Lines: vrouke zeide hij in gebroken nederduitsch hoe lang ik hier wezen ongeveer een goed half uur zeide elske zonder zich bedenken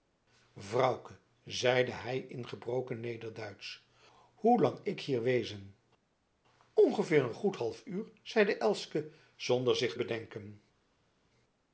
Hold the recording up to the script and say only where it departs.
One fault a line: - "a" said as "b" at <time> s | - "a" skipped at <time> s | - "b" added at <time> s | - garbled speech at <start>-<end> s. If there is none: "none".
none